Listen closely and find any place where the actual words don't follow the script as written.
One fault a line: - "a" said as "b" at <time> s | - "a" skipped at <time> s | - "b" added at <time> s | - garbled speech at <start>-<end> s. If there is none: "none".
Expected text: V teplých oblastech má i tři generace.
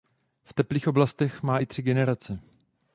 none